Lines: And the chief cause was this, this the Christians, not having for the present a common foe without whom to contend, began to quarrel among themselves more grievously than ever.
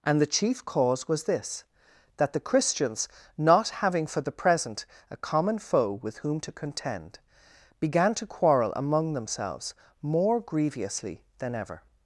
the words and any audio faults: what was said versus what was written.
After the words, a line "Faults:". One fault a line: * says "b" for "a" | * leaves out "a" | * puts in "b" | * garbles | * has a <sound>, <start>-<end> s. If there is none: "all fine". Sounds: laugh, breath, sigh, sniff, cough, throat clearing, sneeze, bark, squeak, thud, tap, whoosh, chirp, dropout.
And the chief cause was this, that the Christians, not having for the present a common foe with whom to contend, began to quarrel among themselves more grievously than ever.
Faults:
* says "that" for "this"
* says "with" for "without"